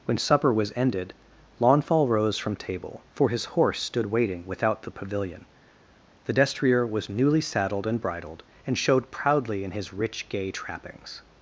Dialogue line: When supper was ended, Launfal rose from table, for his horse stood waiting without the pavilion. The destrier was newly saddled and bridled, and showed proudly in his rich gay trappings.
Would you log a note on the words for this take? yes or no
no